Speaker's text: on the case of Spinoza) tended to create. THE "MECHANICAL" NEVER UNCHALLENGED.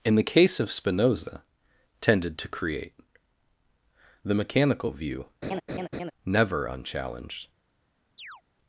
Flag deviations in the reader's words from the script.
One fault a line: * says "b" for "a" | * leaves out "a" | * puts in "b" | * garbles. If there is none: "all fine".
* says "in" for "on"
* puts in "VIEW"